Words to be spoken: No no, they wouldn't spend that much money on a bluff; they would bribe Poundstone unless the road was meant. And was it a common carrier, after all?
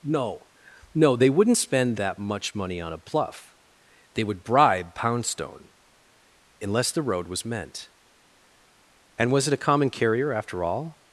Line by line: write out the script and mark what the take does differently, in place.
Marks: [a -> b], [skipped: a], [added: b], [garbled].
No no, they wouldn't spend that much money on a bluff; they would bribe Poundstone unless the road was meant. And was it a common carrier, after all?